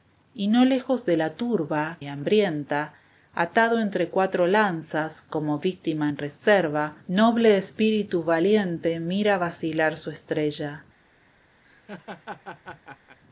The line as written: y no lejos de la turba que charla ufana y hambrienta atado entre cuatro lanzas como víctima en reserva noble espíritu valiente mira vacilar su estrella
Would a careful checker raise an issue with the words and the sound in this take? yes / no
yes